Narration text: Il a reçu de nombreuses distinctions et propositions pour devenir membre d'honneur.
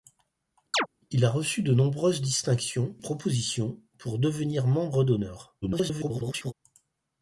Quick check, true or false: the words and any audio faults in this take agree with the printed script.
false